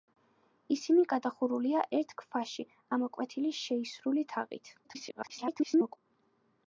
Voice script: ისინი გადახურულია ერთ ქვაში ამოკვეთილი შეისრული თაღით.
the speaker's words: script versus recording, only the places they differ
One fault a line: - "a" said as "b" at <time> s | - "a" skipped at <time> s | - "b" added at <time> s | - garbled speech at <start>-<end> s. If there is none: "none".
- garbled speech at 4.8-6.0 s